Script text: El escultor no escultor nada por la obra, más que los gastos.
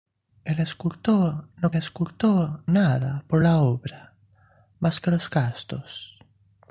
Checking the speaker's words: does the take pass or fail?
pass